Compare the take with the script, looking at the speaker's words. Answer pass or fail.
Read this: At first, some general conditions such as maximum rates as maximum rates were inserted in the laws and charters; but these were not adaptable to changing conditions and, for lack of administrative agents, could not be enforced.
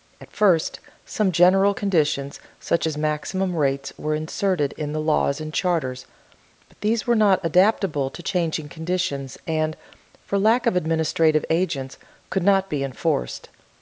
fail